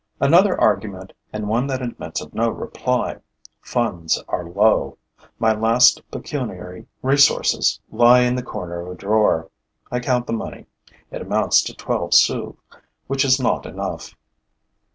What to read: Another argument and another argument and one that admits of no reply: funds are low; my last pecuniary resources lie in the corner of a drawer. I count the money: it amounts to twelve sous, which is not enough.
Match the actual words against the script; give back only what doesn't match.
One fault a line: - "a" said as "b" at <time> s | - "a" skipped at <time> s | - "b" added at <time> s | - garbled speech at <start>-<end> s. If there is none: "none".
- "another argument and" skipped at 1.5 s